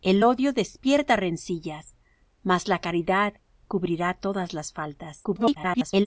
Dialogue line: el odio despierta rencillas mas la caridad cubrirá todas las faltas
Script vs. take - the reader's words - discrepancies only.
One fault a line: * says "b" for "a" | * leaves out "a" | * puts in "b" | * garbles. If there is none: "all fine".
* garbles